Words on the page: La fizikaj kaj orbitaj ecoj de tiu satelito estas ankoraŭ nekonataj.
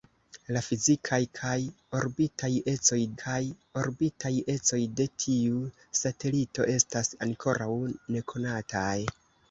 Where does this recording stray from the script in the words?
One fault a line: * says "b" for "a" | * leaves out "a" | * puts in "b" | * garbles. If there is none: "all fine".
* puts in "kaj orbitaj ecoj"